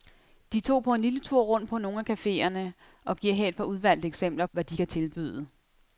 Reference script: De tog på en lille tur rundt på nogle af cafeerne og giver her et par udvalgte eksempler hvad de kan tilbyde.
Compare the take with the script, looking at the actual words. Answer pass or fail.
pass